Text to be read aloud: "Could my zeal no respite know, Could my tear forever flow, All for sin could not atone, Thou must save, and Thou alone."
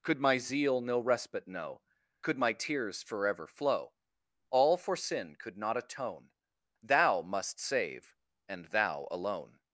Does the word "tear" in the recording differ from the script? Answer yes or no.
yes